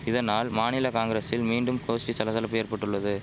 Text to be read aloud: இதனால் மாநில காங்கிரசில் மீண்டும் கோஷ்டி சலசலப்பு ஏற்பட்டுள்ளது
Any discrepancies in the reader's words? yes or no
no